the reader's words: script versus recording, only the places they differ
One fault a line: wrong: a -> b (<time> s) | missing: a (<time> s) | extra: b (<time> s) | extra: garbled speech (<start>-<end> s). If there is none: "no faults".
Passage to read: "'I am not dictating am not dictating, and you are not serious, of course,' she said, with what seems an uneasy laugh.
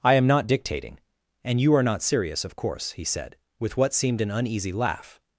missing: am not dictating (1.0 s)
wrong: she -> he (2.9 s)
wrong: seems -> seemed (3.9 s)